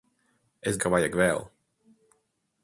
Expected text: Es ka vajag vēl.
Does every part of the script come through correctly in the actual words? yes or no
yes